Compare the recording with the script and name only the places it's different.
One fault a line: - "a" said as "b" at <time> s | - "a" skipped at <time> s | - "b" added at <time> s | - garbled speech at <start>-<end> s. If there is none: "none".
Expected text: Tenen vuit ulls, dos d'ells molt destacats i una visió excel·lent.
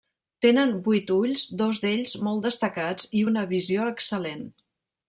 none